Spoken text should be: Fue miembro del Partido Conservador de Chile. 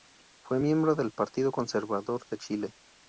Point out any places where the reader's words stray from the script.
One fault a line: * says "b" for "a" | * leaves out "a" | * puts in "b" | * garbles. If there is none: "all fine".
all fine